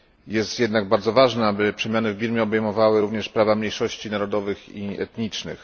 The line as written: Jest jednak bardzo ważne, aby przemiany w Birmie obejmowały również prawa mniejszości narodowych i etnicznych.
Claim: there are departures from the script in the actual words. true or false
false